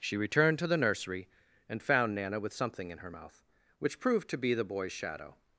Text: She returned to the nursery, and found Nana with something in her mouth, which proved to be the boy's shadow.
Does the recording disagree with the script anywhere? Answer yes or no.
no